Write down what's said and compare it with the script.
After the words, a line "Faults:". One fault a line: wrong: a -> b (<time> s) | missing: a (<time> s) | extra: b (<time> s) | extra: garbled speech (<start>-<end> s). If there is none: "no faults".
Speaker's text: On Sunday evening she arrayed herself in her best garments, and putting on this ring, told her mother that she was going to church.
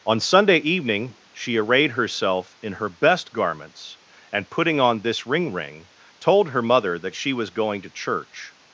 On Sunday evening she arrayed herself in her best garments, and putting on this ring ring, told her mother that she was going to church.
Faults:
extra: ring (5.5 s)